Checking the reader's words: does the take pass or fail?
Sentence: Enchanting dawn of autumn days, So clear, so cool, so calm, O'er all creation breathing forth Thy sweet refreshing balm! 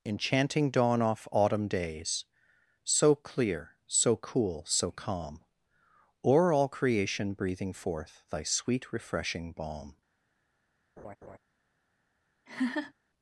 fail